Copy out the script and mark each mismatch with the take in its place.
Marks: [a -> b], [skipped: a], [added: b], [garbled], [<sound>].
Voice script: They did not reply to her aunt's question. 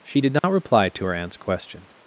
[They -> She] did not [dropout] reply to her aunt's question.